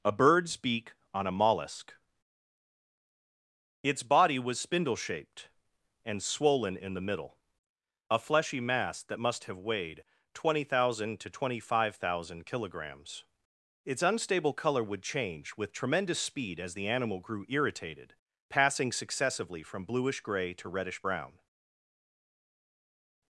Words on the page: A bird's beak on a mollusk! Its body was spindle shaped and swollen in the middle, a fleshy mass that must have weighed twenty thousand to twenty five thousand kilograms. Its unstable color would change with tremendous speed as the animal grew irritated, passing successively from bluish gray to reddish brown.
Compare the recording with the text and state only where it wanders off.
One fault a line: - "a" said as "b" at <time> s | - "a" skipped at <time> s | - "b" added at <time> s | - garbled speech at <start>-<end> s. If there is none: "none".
none